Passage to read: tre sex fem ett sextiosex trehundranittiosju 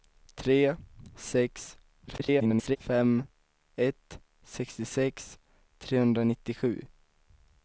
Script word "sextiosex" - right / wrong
right